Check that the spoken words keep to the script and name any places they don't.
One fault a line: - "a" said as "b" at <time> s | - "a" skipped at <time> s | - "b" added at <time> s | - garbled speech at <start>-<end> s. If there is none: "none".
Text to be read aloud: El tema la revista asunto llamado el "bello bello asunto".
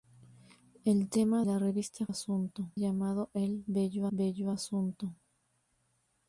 none